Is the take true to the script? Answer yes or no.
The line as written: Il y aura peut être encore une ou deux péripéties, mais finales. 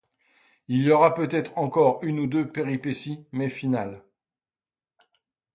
yes